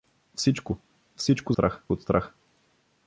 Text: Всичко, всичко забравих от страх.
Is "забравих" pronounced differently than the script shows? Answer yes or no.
yes